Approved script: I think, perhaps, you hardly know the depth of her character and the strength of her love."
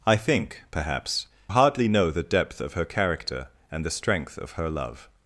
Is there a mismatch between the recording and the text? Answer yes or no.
yes